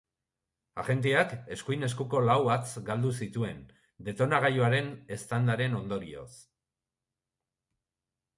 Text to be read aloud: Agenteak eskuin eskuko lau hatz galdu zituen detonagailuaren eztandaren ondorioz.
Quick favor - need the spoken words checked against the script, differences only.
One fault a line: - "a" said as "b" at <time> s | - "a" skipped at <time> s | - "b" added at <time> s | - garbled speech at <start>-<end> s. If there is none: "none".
none